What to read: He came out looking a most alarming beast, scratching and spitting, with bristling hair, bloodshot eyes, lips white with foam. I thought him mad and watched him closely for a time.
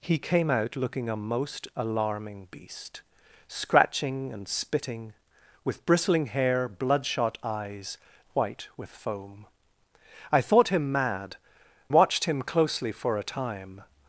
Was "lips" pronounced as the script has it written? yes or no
no